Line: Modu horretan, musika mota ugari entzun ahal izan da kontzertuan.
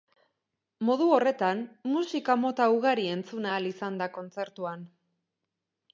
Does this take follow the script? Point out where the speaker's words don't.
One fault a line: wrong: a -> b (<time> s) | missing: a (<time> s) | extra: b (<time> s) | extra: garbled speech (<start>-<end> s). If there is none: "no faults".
no faults